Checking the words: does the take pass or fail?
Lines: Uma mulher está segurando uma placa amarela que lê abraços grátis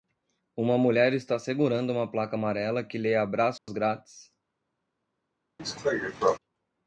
pass